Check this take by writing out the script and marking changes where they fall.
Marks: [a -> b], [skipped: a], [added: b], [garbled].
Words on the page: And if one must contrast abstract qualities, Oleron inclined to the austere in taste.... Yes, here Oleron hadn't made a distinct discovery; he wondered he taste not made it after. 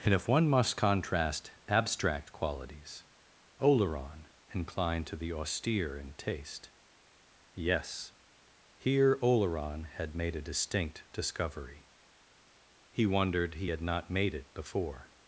And if one must contrast abstract qualities, Oleron inclined to the austere in taste.... Yes, here Oleron [hadn't -> had] made a distinct discovery; he wondered he [taste -> had] not made it [after. -> before]